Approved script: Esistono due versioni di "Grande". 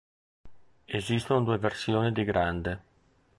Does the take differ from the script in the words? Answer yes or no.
no